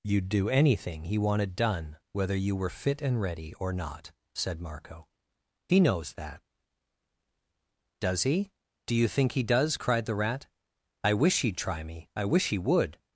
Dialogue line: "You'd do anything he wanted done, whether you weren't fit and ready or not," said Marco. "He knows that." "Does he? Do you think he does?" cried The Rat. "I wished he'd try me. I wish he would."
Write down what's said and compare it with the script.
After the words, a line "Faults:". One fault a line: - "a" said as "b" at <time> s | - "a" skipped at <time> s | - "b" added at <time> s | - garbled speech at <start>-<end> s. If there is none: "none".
"You'd do anything he wanted done, whether you were fit and ready or not," said Marco. "He knows that." "Does he? Do you think he does?" cried The Rat. "I wish he'd try me. I wish he would."
Faults:
- "weren't" said as "were" at 2.5 s
- "wished" said as "wish" at 11.1 s